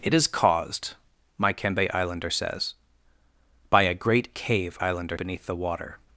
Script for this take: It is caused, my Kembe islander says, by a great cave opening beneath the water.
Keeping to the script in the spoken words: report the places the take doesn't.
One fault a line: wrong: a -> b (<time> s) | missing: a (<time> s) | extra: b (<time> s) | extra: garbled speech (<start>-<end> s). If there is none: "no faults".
wrong: opening -> islander (4.8 s)